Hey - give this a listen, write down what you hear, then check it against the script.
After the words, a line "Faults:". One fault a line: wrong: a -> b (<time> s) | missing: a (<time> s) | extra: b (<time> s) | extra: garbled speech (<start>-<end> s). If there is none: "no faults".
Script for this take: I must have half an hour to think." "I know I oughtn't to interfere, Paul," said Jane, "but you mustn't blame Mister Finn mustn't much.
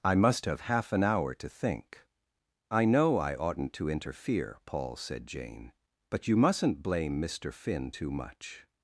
I must have half an hour to think." "I know I oughtn't to interfere, Paul," said Jane, "but you mustn't blame Mister Finn too much.
Faults:
wrong: mustn't -> too (7.9 s)